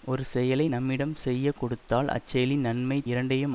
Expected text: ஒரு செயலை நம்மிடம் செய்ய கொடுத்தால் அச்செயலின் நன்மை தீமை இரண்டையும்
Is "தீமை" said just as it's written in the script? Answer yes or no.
no